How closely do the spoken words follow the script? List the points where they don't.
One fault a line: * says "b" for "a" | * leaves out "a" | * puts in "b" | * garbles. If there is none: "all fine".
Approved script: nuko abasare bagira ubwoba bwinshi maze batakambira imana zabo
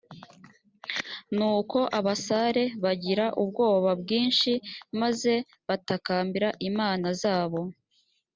all fine